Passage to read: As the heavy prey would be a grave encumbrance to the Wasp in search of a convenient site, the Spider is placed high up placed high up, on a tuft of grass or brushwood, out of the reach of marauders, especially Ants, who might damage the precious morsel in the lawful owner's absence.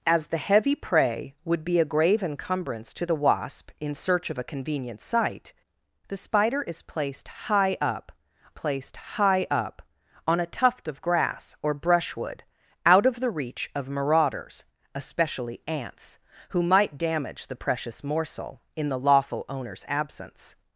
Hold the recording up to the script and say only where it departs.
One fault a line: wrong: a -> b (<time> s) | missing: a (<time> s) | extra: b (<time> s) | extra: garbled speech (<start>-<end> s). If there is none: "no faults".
no faults